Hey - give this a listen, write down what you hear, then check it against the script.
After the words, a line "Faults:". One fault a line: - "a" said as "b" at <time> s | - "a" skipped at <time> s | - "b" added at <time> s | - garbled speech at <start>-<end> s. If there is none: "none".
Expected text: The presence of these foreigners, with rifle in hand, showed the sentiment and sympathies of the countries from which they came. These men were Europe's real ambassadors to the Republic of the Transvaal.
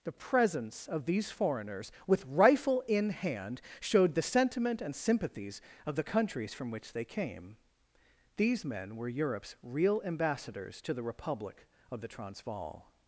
The presence of these foreigners, with rifle in hand, showed the sentiment and sympathies of the countries from which they came. These men were Europe's real ambassadors to the Republic of the Transvaal.
Faults:
none